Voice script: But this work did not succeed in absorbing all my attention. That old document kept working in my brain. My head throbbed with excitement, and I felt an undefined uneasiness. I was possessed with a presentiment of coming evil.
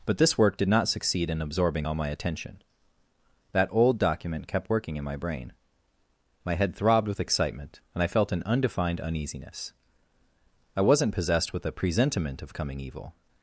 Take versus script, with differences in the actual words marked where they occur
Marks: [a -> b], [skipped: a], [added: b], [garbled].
But this work did not succeed in absorbing all my attention. That old document kept working in my brain. My head throbbed with excitement, and I felt an undefined uneasiness. I [was -> wasn't] possessed with a presentiment of coming evil.